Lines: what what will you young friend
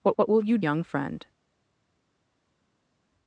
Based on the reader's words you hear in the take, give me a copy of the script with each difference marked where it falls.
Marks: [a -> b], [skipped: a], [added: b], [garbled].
what what will you young friend